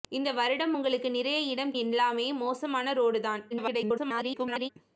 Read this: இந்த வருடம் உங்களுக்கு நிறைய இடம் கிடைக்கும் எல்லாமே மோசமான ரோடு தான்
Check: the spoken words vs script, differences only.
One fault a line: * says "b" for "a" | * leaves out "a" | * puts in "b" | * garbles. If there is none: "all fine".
* leaves out "கிடைக்கும்"
* garbles